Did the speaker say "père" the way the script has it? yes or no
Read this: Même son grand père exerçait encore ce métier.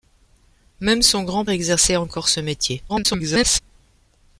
no